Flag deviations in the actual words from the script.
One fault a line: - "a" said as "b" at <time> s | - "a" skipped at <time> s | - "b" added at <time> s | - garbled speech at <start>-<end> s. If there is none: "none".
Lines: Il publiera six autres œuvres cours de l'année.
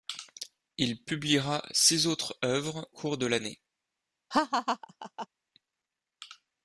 none